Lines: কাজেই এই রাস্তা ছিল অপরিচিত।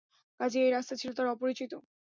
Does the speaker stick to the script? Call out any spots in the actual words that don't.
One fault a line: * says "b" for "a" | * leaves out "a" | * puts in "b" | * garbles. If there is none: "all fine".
* puts in "তার"